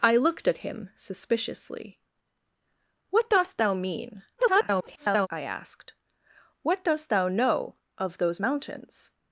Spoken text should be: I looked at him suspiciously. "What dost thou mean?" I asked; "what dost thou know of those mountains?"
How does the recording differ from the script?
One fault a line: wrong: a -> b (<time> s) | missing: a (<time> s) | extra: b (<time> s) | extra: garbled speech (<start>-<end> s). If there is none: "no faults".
extra: garbled speech (4.4-5.3 s)